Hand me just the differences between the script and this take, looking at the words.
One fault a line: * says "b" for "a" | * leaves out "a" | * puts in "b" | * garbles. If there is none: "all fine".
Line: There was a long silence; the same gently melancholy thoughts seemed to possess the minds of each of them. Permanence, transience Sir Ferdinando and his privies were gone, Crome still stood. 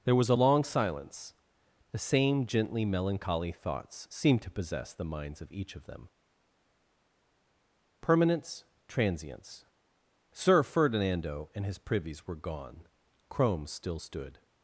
all fine